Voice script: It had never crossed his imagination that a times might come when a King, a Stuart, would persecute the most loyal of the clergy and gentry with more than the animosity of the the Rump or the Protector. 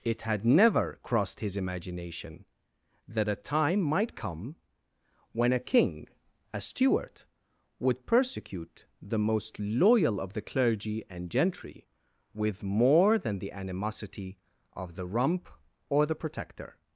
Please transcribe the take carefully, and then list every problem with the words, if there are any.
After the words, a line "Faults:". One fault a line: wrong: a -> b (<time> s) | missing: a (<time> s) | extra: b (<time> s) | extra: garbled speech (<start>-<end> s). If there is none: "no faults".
It had never crossed his imagination that a time might come when a King, a Stuart, would persecute the most loyal of the clergy and gentry with more than the animosity of the Rump or the Protector.
Faults:
wrong: times -> time (3.4 s)
missing: the (15.1 s)